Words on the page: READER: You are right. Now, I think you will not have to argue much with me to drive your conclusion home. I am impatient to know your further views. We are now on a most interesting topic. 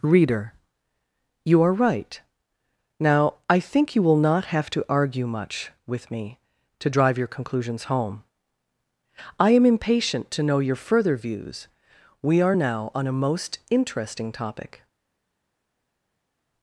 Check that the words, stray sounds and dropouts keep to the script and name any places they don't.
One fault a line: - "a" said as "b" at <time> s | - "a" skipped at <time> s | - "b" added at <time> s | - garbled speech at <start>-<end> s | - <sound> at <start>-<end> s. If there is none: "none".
- "conclusion" said as "conclusions" at 7.3 s